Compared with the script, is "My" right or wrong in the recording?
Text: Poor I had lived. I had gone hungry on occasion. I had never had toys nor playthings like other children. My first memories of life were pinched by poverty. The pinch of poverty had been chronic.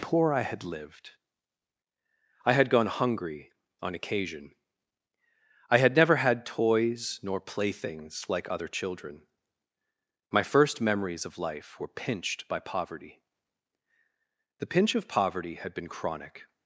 right